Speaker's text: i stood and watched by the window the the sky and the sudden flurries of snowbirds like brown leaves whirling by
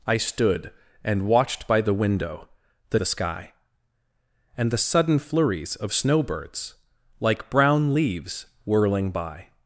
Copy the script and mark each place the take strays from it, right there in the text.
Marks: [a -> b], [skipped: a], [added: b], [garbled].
i stood and watched by the window the the sky and the sudden flurries of snowbirds like brown leaves whirling by